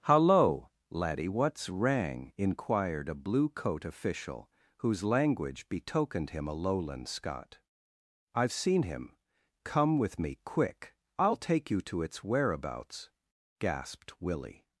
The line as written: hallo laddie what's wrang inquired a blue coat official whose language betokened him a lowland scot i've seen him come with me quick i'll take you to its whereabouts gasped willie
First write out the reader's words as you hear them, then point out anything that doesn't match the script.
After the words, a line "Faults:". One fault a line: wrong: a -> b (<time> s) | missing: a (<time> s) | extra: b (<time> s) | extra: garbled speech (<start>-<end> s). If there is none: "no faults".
hallo laddie what's wrang inquired a blue coat official whose language betokened him a lowland scot i've seen him come with me quick i'll take you to its whereabouts gasped willie
Faults:
no faults